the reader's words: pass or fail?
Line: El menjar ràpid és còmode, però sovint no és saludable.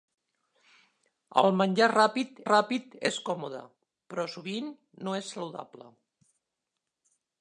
fail